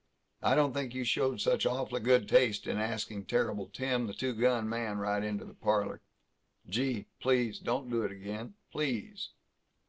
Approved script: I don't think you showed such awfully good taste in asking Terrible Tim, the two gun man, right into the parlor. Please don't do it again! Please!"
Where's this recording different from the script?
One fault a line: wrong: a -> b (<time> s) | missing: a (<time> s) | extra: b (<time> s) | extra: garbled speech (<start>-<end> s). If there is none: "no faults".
extra: Gee (6.7 s)